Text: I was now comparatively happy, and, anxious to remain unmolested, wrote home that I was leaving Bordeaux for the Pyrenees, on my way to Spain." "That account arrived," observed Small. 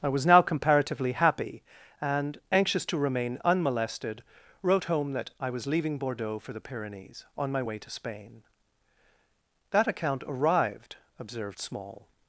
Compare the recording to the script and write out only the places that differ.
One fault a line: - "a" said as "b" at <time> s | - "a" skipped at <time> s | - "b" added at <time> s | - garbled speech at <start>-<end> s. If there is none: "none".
none